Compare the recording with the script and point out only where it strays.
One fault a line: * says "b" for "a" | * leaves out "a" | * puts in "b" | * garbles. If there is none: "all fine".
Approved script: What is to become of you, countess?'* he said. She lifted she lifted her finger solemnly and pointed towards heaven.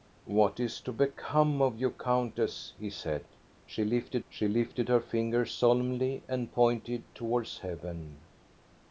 all fine